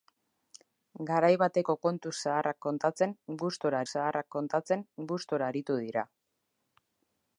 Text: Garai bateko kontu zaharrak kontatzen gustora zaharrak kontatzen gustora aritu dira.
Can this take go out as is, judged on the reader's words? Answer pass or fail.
pass